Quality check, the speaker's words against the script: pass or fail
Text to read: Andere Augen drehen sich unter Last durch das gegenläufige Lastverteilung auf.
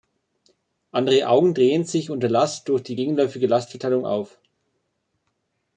fail